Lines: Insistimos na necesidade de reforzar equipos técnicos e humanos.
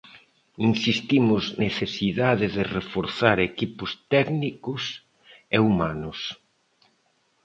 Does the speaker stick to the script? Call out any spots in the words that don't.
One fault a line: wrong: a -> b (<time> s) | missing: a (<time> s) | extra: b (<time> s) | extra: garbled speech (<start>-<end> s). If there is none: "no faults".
missing: na (1.4 s)